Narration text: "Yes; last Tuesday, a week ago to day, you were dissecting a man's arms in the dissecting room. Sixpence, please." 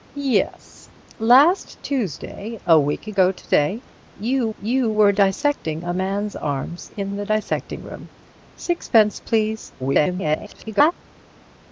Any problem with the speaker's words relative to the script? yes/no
yes